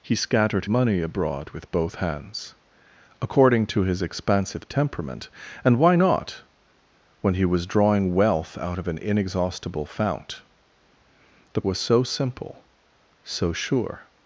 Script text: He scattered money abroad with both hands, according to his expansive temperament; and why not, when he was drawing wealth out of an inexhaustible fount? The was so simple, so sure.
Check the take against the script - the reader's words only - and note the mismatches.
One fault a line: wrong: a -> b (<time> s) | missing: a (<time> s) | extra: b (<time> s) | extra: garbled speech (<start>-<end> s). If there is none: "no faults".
no faults